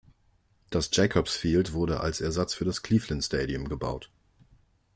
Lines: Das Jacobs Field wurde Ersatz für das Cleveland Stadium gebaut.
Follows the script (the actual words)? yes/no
no